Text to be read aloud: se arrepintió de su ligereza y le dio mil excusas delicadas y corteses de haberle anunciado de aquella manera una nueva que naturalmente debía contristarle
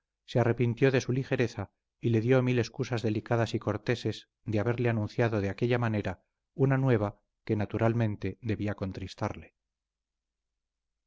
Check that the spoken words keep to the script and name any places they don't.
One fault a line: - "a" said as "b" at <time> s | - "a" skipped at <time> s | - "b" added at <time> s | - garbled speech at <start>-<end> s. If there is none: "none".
none